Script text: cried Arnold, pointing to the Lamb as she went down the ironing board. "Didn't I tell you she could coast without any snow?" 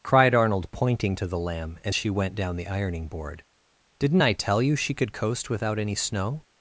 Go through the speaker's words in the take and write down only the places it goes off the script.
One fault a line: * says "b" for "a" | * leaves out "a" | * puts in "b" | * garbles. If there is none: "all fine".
all fine